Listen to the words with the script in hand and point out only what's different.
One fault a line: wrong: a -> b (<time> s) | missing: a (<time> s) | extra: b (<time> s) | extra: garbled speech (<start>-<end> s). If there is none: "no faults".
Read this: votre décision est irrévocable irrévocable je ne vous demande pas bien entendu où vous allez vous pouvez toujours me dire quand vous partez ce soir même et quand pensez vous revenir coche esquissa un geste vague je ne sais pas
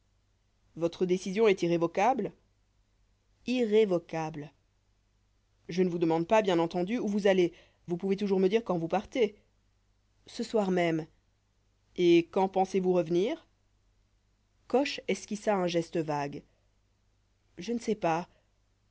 no faults